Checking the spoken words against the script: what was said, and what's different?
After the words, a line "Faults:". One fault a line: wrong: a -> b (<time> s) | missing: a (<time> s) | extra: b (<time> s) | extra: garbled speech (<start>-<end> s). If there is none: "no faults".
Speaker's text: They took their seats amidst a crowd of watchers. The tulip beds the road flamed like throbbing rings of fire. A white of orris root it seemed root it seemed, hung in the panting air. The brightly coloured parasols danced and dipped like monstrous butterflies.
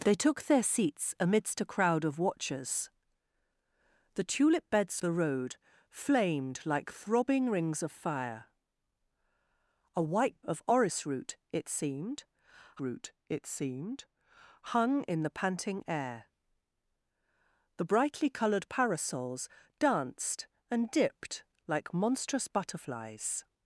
They took their seats amidst a crowd of watchers. The tulip beds the road flamed like throbbing rings of fire. A white of orris root it seemed root it seemed, hung in the panting air. The brightly coloured parasols danced and dipped like monstrous butterflies.
Faults:
no faults